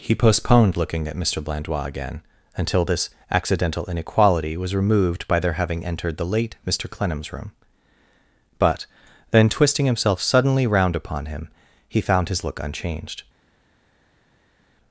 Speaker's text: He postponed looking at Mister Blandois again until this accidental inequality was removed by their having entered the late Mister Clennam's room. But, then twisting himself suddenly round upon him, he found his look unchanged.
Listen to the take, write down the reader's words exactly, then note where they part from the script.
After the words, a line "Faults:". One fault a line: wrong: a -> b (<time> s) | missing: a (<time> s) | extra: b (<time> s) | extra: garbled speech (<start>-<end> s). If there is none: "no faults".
He postponed looking at Mister Blandois again until this accidental inequality was removed by their having entered the late Mister Clennam's room. But, then twisting himself suddenly round upon him, he found his look unchanged.
Faults:
no faults